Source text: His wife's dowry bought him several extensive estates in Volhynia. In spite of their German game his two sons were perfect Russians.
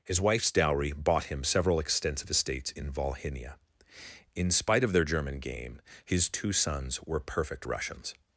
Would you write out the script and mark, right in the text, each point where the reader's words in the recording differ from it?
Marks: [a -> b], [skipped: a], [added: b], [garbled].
His wife's dowry bought him several extensive estates in Volhynia. In spite of their German game his two sons were perfect Russians.